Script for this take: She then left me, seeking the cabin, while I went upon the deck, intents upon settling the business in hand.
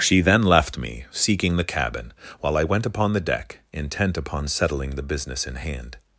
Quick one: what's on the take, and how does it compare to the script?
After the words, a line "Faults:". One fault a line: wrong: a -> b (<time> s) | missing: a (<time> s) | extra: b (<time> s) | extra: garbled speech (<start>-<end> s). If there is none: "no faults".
She then left me, seeking the cabin, while I went upon the deck, intent upon settling the business in hand.
Faults:
wrong: intents -> intent (3.7 s)